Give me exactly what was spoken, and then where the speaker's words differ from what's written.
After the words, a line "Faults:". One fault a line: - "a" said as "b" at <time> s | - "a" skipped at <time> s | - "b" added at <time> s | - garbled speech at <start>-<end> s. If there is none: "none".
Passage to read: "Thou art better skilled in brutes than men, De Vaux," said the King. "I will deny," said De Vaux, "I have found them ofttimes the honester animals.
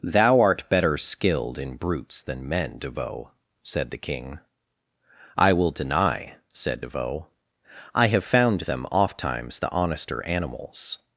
"Thou art better skilled in brutes than men, De Vaux," said the King. "I will deny," said De Vaux, "I have found them ofttimes the honester animals.
Faults:
none